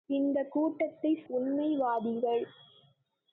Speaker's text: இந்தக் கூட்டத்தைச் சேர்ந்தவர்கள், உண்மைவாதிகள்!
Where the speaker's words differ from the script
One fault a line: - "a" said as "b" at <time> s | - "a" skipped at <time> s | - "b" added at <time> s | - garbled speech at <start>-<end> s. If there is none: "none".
- "சேர்ந்தவர்கள்" skipped at 1.2 s